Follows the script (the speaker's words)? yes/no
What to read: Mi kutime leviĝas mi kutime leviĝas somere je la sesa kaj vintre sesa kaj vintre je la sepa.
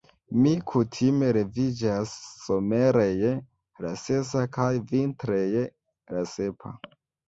no